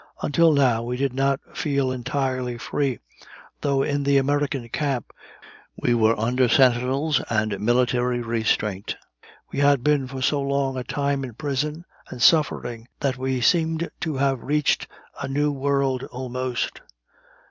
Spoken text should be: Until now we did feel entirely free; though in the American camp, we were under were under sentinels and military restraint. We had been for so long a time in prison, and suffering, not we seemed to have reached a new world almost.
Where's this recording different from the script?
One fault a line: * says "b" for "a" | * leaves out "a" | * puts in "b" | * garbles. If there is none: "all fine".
* puts in "not"
* leaves out "were under"
* says "that" for "not"